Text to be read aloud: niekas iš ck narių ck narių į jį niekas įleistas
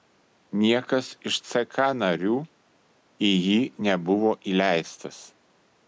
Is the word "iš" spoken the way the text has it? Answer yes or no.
yes